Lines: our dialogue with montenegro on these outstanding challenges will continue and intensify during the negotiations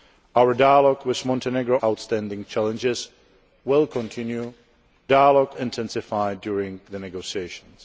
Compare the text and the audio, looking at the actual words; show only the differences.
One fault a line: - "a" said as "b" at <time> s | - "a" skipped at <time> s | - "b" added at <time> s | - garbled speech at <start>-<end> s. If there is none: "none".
- "on these" skipped at 1.8 s
- "and" said as "dialogue" at 5.1 s